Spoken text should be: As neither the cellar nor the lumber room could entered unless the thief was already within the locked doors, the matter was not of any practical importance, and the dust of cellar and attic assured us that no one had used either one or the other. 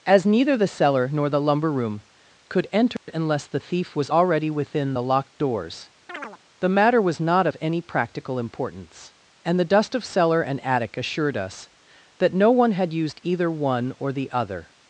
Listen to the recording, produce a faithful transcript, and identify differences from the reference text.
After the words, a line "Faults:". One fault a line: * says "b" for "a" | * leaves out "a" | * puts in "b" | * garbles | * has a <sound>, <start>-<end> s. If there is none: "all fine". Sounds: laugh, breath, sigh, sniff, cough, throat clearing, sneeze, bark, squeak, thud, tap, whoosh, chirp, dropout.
As neither the cellar nor the lumber room could entered unless the thief was already within the locked doors, the matter was not of any practical importance, and the dust of cellar and attic assured us that no one had used either one or the other.
Faults:
* has a dropout, 3.0-3.1 s
* has a chirp, 6.1-6.4 s